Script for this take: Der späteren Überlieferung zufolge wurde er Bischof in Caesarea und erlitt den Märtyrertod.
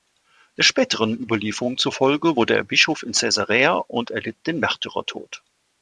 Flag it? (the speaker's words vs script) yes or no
no